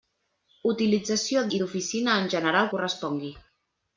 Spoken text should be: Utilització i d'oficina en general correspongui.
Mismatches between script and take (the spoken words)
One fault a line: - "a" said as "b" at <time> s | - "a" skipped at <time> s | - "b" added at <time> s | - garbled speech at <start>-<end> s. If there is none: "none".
none